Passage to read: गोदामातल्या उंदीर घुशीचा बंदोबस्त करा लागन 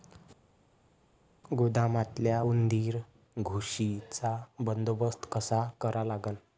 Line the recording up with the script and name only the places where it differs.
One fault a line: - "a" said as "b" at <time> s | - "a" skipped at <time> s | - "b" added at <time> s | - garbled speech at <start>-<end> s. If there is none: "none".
- "कसा" added at 5.3 s